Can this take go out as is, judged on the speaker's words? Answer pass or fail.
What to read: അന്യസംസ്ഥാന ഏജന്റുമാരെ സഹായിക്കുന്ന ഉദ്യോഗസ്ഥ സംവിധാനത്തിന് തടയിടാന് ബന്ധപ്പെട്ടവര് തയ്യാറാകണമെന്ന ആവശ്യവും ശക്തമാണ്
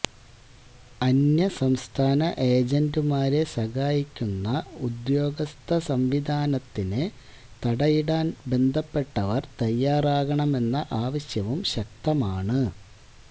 pass